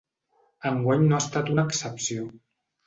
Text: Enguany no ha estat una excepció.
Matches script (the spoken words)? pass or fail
pass